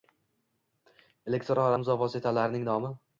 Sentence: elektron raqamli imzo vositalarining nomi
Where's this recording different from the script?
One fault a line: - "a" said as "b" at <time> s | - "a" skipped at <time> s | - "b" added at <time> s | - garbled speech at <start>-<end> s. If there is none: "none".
- "raqamli" skipped at 1.7 s